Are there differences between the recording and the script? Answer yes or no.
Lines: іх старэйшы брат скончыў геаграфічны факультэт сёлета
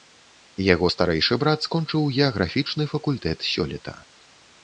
yes